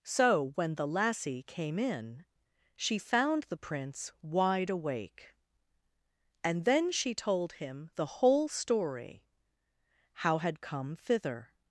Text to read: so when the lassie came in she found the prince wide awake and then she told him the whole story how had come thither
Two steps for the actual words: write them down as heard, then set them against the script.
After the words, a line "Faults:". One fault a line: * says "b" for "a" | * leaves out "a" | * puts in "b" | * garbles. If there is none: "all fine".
so when the lassie came in she found the prince wide awake and then she told him the whole story how had come thither
Faults:
all fine